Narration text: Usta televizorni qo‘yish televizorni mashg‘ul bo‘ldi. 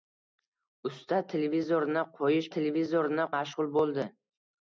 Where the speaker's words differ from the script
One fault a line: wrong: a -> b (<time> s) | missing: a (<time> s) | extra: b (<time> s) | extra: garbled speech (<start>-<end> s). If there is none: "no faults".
no faults